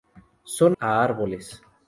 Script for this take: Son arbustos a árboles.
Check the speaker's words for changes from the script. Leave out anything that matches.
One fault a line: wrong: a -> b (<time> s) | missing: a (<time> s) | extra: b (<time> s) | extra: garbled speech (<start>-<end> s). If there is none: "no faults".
missing: arbustos (0.8 s)